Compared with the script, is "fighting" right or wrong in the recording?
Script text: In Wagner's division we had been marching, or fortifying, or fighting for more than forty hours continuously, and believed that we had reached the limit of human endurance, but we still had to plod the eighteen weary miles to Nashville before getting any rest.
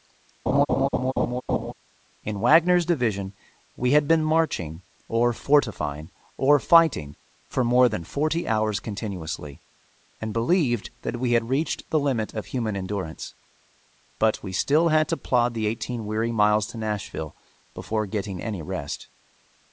right